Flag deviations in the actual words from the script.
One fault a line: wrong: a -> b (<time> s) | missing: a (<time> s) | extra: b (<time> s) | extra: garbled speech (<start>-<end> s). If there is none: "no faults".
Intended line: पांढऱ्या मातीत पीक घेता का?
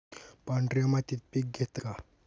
no faults